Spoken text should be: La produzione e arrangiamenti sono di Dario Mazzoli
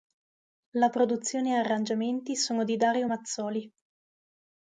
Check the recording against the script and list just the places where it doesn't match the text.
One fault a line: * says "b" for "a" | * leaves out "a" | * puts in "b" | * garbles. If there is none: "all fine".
all fine